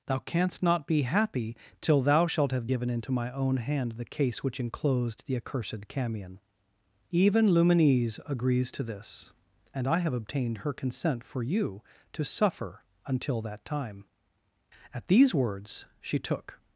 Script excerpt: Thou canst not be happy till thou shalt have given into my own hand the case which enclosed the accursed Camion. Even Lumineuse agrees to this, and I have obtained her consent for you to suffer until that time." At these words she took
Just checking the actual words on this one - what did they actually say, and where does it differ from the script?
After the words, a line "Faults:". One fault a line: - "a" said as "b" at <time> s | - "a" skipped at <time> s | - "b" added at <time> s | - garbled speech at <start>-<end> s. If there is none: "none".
Thou canst not be happy till thou shalt have given into my own hand the case which enclosed the accursed Camion. Even Lumineuse agrees to this, and I have obtained her consent for you to suffer until that time." At these words she took
Faults:
none